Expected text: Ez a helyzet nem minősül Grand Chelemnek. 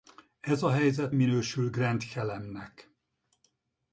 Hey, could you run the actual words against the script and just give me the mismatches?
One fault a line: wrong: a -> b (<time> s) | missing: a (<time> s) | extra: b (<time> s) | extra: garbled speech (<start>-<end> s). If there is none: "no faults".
missing: nem (1.1 s)